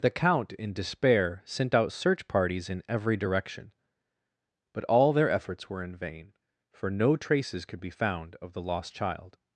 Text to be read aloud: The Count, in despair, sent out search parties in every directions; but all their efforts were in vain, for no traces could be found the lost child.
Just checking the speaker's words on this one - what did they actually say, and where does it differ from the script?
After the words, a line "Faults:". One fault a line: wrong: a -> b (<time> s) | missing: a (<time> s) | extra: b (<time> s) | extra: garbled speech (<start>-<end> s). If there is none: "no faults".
The Count, in despair, sent out search parties in every direction; but all their efforts were in vain, for no traces could be found of the lost child.
Faults:
wrong: directions -> direction (3.1 s)
extra: of (8.4 s)